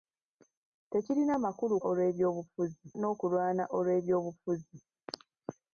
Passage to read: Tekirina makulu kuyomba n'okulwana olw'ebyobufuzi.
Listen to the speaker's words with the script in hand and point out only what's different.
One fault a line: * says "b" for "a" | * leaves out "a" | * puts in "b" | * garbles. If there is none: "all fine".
* says "olw'ebyobufuzi" for "kuyomba"